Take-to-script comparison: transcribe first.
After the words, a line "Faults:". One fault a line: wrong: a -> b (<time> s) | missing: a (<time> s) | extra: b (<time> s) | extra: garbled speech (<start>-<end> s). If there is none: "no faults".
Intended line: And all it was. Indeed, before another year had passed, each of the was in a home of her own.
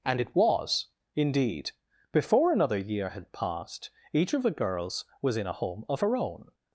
And it was. Indeed, before another year had passed, each of the girls was in a home of her own.
Faults:
missing: all (0.2 s)
extra: girls (4.5 s)